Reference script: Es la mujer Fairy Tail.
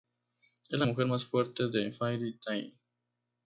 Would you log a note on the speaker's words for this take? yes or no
yes